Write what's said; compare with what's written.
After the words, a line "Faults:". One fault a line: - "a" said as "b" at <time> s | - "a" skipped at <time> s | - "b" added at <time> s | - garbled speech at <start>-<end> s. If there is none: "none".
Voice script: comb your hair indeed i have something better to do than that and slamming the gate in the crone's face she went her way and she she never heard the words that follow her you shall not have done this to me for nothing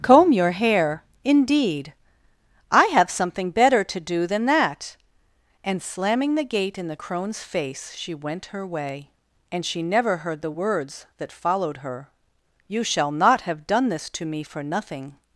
comb your hair indeed i have something better to do than that and slamming the gate in the crone's face she went her way and she never heard the words that followed her you shall not have done this to me for nothing
Faults:
- "she" skipped at 9.8 s
- "follow" said as "followed" at 11.3 s